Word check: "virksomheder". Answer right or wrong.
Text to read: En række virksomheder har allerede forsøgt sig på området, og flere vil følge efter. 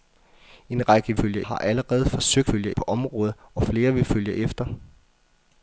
wrong